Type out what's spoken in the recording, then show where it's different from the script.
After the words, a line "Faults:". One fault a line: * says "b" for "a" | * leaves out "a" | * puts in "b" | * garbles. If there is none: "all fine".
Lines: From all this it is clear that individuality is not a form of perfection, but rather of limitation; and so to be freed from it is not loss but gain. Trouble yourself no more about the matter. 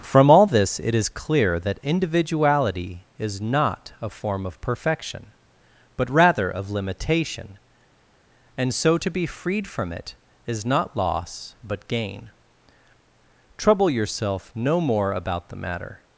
From all this it is clear that individuality is not a form of perfection, but rather of limitation; and so to be freed from it is not loss but gain. Trouble yourself no more about the matter.
Faults:
all fine